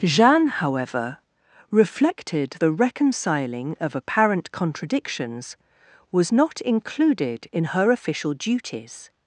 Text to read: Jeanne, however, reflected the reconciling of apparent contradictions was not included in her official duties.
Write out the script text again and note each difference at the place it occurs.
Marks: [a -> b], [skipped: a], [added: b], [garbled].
Jeanne, however, reflected the reconciling of apparent contradictions was not included in her official duties.